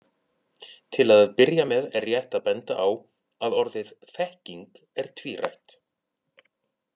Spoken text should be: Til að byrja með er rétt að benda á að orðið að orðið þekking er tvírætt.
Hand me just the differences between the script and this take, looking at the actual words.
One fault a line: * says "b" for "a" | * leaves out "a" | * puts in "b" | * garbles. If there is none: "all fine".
* leaves out "að orðið"